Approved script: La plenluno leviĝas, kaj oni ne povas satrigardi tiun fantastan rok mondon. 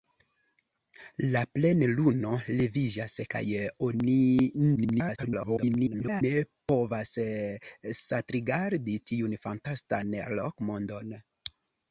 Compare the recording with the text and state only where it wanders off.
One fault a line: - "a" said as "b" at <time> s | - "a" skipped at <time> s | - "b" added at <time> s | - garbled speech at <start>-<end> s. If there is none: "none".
- garbled speech at 4.8-6.2 s